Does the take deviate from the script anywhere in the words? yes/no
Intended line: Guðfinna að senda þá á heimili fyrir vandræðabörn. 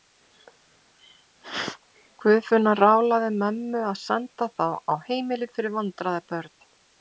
yes